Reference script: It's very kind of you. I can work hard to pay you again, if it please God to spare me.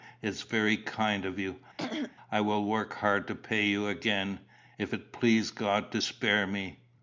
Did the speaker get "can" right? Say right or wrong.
wrong